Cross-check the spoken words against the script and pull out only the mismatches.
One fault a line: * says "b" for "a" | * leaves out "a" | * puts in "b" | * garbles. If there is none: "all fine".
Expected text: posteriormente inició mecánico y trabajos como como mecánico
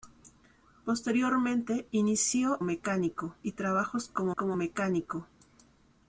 all fine